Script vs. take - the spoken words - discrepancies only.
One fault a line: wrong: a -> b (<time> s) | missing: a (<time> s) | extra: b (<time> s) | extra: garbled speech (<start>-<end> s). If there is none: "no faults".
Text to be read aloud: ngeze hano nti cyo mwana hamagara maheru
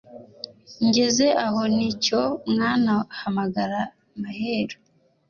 wrong: hano -> aho (1.4 s)